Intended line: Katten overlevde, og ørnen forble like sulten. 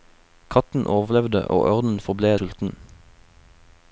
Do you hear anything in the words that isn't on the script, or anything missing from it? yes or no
yes